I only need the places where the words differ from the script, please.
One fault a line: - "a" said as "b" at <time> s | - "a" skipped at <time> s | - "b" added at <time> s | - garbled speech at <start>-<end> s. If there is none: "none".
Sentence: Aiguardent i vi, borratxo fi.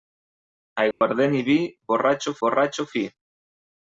- "borratxo" added at 2.5 s